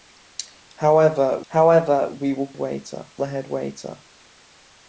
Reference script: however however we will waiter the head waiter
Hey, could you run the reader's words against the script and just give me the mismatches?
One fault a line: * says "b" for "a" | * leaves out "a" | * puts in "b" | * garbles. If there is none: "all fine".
all fine